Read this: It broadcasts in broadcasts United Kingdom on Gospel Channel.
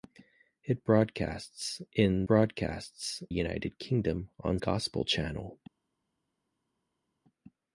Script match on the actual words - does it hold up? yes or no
yes